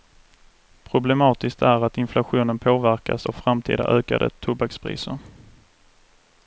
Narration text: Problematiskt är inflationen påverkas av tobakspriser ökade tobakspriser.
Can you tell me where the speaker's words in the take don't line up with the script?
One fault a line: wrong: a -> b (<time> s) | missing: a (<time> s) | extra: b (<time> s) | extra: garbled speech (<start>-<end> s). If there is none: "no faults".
extra: att (1.9 s)
wrong: tobakspriser -> framtida (3.3 s)